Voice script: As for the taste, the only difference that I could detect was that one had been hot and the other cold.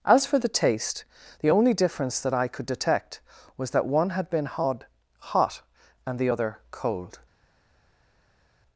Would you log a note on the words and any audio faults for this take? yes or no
yes